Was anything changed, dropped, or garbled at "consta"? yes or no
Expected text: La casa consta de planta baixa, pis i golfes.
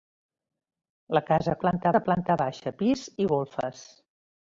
yes